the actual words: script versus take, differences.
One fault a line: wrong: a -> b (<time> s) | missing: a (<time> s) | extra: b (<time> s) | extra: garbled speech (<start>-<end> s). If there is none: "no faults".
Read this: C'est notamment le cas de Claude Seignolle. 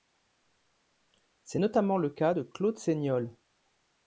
no faults